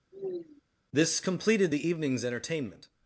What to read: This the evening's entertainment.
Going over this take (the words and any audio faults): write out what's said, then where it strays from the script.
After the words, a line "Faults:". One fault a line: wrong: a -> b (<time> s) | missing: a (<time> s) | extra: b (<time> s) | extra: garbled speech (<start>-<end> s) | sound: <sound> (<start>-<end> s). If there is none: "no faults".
This completed the evening's entertainment.
Faults:
sound: sigh (0.1-0.6 s)
extra: completed (1.2 s)